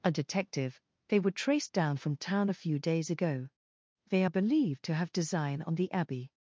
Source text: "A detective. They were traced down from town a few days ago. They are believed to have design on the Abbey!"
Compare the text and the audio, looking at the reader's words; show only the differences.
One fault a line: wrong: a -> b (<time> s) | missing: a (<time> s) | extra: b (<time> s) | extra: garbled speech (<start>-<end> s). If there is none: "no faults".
no faults